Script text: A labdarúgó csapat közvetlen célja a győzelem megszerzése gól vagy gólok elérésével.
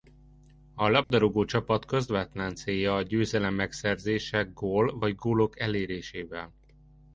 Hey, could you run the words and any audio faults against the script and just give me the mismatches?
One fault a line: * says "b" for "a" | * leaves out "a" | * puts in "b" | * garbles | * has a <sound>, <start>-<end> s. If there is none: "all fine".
* has a dropout, 1.0-1.1 s